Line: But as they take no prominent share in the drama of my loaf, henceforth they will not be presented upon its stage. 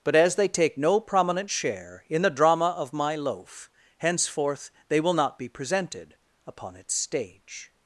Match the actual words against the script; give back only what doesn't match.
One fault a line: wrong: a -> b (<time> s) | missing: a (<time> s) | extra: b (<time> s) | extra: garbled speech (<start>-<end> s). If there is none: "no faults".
no faults